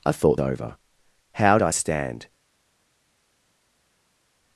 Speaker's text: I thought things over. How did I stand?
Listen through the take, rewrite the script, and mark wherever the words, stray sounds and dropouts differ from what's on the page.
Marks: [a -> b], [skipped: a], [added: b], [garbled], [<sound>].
I thought [skipped: things] over. How [skipped: did] I stand?